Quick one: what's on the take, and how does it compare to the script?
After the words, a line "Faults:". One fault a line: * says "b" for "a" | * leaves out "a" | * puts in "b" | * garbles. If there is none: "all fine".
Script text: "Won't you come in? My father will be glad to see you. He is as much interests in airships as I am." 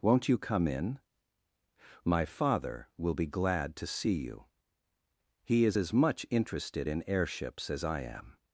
"Won't you come in? My father will be glad to see you. He is as much interested in airships as I am."
Faults:
* says "interested" for "interests"